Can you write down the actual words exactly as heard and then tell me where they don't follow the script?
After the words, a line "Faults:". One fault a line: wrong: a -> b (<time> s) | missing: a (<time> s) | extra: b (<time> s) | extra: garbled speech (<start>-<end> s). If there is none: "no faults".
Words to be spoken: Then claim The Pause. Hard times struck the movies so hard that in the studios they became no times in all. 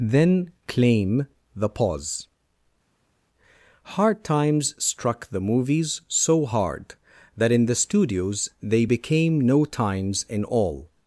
Then claim The Pause. Hard times struck the movies so hard that in the studios they became no times in all.
Faults:
no faults